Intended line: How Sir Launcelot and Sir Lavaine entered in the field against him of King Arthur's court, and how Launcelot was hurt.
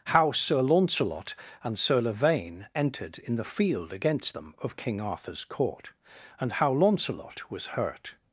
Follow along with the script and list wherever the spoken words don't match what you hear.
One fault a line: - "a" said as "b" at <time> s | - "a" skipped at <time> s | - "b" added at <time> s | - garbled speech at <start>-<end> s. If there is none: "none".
- "him" said as "them" at 4.3 s